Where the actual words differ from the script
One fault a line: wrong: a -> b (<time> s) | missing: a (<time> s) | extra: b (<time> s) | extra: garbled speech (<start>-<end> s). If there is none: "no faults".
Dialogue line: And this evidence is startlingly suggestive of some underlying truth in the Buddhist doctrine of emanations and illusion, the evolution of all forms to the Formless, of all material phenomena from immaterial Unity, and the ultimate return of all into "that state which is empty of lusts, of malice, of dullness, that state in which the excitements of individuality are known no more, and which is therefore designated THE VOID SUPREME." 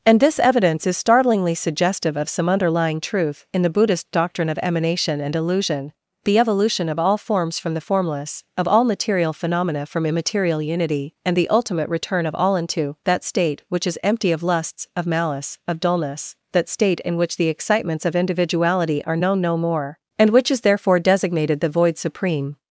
wrong: emanations -> emanation (4.6 s)
wrong: to -> from (7.6 s)